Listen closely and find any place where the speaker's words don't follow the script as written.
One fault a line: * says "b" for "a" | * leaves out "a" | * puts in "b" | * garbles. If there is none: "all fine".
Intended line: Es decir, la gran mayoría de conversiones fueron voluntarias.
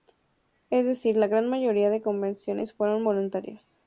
all fine